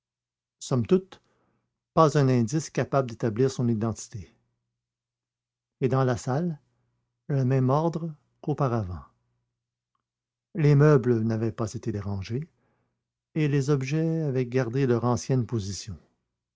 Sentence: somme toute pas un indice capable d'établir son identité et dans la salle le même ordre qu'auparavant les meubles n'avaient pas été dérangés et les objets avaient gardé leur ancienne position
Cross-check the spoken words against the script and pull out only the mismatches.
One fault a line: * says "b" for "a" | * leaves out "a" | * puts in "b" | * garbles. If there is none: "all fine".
all fine